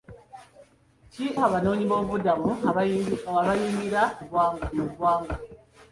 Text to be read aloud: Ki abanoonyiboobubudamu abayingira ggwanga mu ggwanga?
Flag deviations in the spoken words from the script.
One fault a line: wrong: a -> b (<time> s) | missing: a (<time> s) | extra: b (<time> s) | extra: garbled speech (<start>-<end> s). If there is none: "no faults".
no faults